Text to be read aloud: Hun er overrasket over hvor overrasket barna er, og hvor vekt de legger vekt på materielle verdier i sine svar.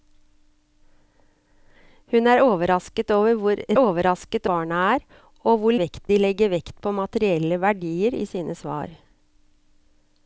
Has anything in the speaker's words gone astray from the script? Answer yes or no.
no